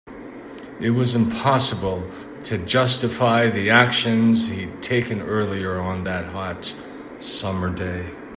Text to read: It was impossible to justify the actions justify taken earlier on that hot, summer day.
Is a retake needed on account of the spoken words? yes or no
yes